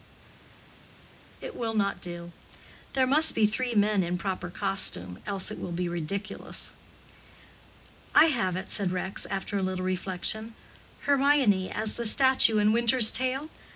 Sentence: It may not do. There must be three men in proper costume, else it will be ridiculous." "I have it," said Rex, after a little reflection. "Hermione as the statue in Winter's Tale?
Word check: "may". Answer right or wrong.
wrong